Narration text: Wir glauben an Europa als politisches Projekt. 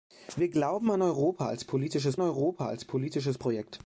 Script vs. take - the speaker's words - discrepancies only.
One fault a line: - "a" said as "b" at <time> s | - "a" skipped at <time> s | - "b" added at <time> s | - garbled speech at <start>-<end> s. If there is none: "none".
- "Europa als politisches" added at 2.2 s